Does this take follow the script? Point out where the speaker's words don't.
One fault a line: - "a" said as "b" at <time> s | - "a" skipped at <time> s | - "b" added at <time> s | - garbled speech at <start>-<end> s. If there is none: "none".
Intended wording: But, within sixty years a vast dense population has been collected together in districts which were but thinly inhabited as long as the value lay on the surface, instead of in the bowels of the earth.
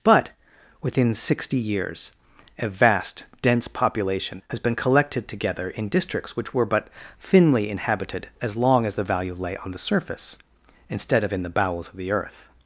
none